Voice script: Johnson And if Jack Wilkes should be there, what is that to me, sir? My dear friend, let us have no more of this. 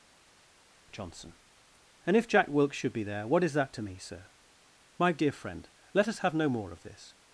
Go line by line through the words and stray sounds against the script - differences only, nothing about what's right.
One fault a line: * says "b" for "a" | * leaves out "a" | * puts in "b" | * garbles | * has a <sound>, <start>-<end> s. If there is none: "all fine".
all fine